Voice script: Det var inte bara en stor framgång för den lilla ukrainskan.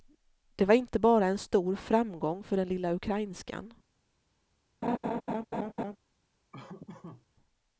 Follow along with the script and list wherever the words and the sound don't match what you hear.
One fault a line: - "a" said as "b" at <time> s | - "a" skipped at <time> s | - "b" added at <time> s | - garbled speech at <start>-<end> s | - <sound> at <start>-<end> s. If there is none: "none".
- laugh at 4.8-6.0 s
- laugh at 6.5-7.3 s